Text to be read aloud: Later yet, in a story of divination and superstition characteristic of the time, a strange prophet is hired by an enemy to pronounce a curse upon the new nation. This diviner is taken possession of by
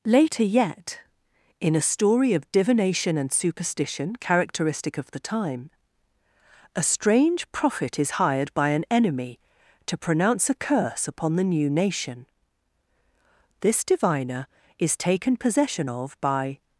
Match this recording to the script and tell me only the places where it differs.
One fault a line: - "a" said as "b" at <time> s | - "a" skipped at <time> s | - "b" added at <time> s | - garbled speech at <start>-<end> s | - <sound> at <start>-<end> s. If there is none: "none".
none